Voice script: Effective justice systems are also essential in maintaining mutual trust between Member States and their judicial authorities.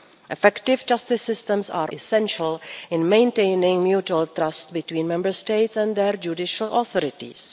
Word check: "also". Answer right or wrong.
wrong